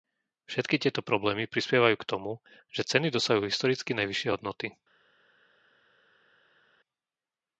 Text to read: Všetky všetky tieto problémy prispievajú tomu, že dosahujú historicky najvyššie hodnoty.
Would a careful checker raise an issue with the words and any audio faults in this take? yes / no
yes